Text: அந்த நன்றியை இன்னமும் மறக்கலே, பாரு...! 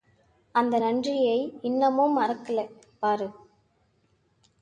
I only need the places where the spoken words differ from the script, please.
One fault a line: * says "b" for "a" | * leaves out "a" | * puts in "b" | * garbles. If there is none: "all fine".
all fine